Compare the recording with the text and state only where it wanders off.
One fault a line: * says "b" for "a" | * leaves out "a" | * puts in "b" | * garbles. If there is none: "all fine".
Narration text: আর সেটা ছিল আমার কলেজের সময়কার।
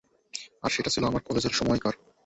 all fine